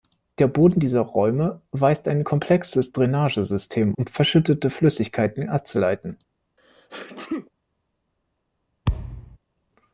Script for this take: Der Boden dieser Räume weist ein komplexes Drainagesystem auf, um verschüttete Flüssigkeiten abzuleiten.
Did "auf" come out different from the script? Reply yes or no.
yes